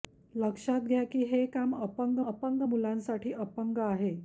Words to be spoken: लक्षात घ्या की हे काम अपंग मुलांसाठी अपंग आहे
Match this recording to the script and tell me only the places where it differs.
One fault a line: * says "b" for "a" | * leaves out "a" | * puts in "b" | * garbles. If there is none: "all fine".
* puts in "अपंग"